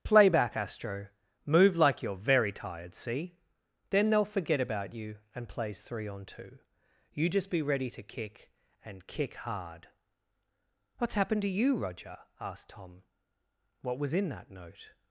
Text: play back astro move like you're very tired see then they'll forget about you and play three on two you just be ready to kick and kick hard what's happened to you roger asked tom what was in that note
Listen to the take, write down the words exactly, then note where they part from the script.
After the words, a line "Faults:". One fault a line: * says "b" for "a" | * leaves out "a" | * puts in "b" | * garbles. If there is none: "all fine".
play back astro move like you're very tired see then they'll forget about you and plays three on two you just be ready to kick and kick hard what's happened to you roger asked tom what was in that note
Faults:
* says "plays" for "play"